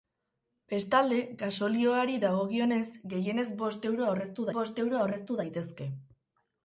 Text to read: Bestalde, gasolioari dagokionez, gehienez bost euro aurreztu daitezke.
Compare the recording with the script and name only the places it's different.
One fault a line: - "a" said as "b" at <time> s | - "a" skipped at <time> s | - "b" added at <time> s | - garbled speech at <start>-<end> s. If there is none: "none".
- "bost euro aurreztu" added at 4.6 s